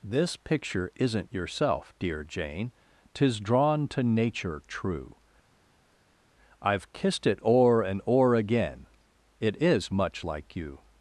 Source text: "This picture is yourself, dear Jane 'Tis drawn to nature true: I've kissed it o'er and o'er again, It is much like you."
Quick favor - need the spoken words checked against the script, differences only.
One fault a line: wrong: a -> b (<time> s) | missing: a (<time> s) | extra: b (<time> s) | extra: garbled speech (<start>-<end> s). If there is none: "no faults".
wrong: is -> isn't (0.9 s)